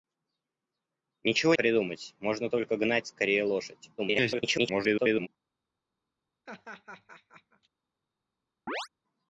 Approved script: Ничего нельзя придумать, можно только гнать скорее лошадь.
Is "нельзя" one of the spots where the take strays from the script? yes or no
yes